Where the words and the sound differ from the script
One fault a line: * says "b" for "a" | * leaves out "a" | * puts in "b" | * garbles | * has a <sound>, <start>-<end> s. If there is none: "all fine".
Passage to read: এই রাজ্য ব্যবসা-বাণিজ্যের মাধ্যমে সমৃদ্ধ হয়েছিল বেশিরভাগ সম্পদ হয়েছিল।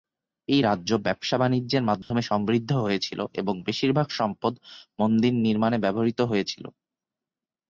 * has a dropout, 2.0-2.1 s
* puts in "এবং"
* puts in "মন্দির নির্মাণে ব্যবহৃত"